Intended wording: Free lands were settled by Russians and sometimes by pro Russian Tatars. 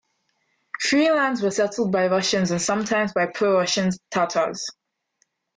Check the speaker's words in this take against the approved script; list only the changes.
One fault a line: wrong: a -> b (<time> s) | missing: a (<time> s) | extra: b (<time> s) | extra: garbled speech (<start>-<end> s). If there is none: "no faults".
no faults